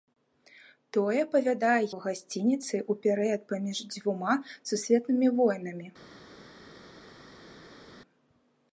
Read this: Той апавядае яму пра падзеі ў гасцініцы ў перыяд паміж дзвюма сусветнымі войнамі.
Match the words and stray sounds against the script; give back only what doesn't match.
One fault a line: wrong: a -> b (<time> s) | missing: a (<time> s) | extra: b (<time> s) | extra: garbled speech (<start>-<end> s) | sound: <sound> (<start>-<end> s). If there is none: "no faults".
missing: яму пра падзеі (1.8 s)